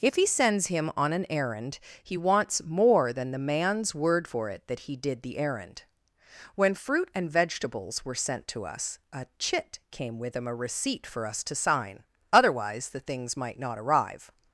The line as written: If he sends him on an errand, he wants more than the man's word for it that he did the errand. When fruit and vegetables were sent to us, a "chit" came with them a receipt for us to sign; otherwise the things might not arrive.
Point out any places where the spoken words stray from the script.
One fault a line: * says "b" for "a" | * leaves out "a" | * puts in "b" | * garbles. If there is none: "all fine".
all fine